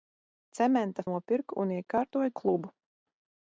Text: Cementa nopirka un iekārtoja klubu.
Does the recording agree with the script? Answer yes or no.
yes